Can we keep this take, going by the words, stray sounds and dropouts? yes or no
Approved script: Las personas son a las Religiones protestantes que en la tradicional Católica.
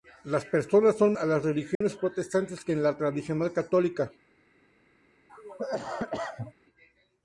no